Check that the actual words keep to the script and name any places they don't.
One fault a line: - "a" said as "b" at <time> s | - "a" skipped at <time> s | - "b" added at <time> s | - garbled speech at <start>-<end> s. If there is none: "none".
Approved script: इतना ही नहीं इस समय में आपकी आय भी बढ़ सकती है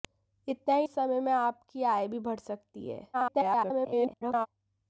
- "नहीं" skipped at 0.9 s
- garbled speech at 3.1-4.5 s